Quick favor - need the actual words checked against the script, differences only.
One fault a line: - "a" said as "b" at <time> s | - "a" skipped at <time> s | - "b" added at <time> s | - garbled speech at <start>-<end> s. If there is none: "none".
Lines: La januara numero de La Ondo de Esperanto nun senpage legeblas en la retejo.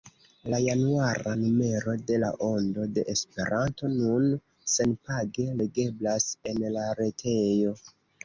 none